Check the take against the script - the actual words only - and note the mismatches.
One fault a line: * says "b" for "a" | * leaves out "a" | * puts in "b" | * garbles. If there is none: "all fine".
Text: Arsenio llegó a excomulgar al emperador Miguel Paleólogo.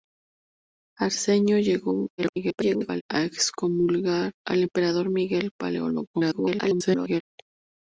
* garbles
* garbles